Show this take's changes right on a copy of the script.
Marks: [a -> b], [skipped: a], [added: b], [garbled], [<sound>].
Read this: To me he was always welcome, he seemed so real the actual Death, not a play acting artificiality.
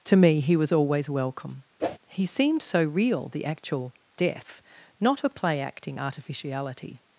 To me he was always welcome, [whoosh] he seemed so real the actual Death, not a play acting artificiality.